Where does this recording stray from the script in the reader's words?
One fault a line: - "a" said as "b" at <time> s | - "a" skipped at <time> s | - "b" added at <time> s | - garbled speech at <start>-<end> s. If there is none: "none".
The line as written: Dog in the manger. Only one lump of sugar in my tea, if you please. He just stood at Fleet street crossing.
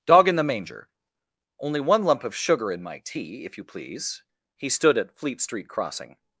- "just" skipped at 4.7 s